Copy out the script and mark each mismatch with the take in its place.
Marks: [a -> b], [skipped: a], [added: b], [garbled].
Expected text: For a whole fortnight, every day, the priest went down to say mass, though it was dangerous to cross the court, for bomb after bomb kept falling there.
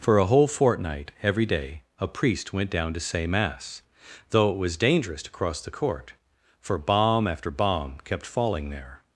For a whole fortnight, every day, [the -> a] priest went down to say mass, though it was dangerous to cross the court, for bomb after bomb kept falling there.